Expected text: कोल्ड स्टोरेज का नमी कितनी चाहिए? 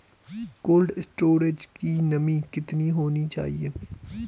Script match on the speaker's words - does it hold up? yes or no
no